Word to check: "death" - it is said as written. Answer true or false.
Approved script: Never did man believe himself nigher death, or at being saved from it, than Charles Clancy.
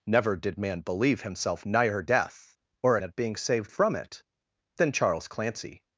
true